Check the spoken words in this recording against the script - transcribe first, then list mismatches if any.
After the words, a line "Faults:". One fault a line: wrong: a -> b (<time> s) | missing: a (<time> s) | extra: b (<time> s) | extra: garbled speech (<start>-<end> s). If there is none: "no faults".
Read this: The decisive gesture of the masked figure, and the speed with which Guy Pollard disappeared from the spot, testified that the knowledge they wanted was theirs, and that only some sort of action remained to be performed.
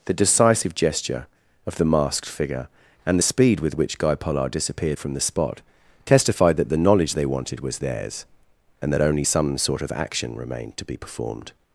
The decisive gesture of the masked figure, and the speed with which Guy Pollard disappeared from the spot, testified that the knowledge they wanted was theirs, and that only some sort of action remained to be performed.
Faults:
no faults